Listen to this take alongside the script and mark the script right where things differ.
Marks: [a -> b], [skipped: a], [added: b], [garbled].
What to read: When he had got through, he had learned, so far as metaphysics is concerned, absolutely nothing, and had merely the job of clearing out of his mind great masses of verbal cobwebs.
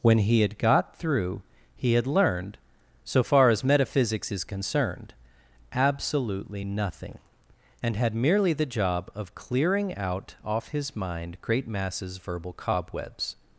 When he had got through, he had learned, so far as metaphysics is concerned, absolutely nothing, and had merely the job of clearing out [of -> off] his mind great masses [skipped: of] verbal cobwebs.